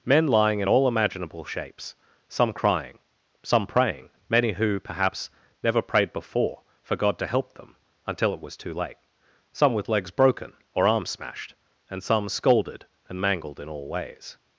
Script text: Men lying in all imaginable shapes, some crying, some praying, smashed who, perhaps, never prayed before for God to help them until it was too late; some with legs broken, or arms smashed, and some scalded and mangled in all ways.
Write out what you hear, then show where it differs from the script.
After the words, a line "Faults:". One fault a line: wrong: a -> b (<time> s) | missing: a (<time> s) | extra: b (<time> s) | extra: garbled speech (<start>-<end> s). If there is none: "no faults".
Men lying in all imaginable shapes, some crying, some praying, many who, perhaps, never prayed before for God to help them until it was too late; some with legs broken, or arms smashed, and some scalded and mangled in all ways.
Faults:
wrong: smashed -> many (4.3 s)